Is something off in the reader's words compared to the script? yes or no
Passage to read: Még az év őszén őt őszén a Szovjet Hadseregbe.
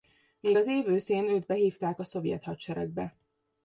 yes